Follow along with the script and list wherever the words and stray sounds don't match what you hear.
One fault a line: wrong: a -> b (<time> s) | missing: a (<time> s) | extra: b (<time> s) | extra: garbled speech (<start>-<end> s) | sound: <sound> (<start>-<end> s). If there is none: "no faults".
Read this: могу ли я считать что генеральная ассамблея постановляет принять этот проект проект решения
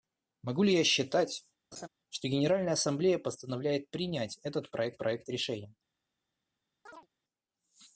sound: laugh (1.7-1.9 s)
sound: chirp (6.9-7.1 s)